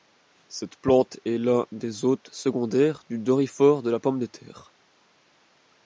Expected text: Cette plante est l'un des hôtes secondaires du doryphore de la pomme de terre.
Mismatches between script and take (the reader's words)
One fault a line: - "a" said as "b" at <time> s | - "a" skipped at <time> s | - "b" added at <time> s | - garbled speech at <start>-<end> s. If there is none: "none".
none